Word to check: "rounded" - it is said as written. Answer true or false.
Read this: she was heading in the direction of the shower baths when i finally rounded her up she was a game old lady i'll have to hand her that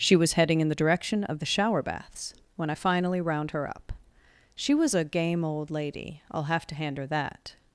false